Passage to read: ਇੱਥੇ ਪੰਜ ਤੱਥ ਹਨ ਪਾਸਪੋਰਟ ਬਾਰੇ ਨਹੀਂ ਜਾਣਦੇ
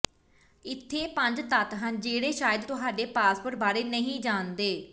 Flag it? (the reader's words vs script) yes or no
yes